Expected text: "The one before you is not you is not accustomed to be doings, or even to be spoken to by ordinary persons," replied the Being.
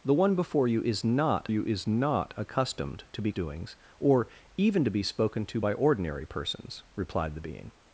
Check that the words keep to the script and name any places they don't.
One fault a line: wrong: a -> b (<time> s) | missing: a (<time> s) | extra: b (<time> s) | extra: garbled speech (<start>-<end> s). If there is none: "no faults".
no faults